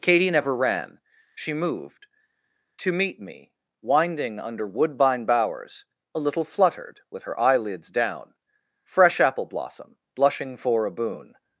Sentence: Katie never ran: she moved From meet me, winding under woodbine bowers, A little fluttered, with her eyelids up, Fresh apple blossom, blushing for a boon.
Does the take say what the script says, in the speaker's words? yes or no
no